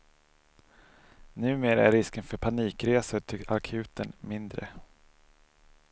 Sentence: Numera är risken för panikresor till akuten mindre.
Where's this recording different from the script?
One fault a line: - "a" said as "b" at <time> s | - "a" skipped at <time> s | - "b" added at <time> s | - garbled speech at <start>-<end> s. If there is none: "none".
none